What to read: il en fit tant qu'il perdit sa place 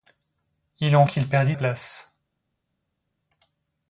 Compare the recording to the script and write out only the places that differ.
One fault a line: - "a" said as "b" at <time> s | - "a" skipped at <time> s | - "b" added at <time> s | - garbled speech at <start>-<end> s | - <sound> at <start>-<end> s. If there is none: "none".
- "fit tant" skipped at 1.1 s
- "sa" skipped at 1.5 s